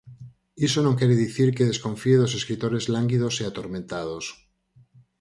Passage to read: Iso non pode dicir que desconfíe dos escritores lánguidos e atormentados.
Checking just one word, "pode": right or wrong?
wrong